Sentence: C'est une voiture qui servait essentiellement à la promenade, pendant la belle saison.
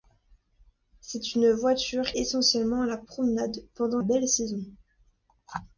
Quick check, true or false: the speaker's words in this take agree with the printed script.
false